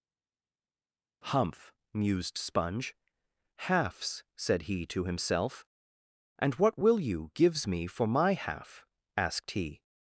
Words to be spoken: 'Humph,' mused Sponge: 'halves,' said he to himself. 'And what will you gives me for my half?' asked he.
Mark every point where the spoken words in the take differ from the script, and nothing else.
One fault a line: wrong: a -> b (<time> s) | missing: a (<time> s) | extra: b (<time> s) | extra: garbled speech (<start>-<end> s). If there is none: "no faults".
no faults